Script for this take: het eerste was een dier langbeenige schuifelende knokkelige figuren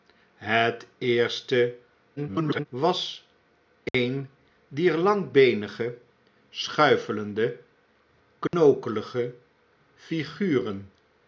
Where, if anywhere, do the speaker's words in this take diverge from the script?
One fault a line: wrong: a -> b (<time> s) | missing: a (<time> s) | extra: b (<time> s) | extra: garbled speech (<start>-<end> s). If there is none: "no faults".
extra: garbled speech (2.2-2.7 s)